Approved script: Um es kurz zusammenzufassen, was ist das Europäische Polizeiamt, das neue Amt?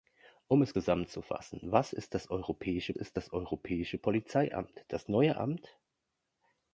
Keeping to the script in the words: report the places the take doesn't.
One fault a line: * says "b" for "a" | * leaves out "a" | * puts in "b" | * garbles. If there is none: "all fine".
* leaves out "kurz"
* puts in "ist das Europäische"